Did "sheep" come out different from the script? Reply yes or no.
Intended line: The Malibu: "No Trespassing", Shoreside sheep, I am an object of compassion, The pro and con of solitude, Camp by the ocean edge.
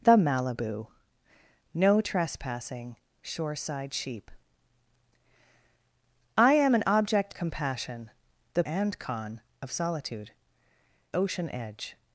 no